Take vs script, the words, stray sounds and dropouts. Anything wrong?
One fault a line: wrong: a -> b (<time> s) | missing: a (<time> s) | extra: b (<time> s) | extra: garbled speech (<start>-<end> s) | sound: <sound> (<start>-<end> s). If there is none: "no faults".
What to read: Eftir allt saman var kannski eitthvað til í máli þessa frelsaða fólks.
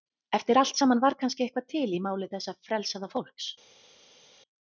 no faults